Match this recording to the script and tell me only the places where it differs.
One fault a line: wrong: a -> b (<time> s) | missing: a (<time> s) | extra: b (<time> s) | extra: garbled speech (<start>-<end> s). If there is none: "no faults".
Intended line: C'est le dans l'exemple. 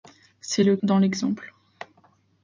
no faults